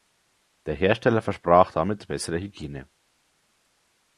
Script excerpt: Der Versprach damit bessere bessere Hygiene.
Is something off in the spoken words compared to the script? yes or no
yes